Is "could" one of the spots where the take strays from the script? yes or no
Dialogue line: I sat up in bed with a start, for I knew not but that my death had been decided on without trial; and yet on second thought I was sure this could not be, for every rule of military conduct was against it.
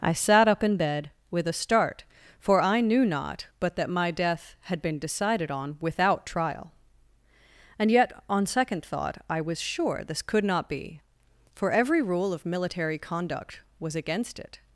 no